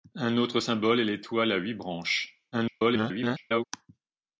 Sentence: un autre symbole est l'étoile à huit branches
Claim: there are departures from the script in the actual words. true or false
true